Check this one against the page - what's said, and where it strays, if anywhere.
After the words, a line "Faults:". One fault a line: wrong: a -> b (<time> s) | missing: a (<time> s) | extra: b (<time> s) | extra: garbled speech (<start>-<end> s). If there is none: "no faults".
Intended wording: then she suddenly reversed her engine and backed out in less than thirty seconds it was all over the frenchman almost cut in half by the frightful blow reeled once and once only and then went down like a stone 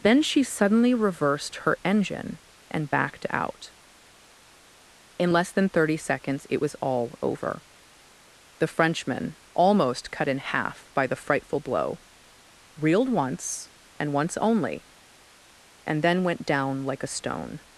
then she suddenly reversed her engine and backed out in less than thirty seconds it was all over the frenchman almost cut in half by the frightful blow reeled once and once only and then went down like a stone
Faults:
no faults